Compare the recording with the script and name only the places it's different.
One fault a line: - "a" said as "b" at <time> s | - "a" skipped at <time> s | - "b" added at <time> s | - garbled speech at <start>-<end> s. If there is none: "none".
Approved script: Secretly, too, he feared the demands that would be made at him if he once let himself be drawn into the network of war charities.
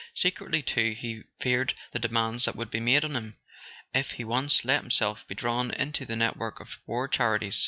- "at" said as "on" at 3.0 s